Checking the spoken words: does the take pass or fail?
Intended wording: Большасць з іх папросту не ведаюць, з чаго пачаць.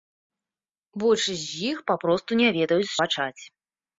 fail